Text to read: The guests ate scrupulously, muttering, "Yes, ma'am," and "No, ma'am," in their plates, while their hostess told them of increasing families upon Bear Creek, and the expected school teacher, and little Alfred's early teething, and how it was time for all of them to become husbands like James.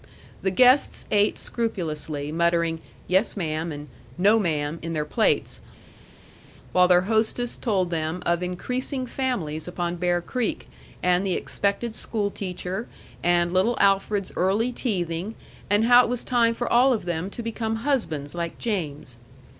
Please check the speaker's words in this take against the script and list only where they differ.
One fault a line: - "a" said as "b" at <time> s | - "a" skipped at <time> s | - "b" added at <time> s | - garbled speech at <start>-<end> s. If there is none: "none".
none